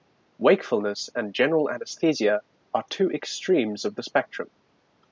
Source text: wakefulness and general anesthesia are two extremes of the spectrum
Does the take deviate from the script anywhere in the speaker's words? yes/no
no